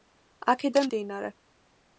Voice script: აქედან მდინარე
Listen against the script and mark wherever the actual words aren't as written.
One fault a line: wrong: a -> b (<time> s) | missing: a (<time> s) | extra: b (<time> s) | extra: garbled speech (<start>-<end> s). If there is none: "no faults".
no faults